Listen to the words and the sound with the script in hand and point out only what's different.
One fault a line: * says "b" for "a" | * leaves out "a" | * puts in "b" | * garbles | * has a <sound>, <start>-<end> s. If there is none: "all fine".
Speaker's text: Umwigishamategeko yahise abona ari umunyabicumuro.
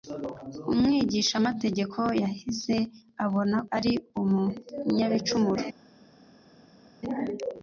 all fine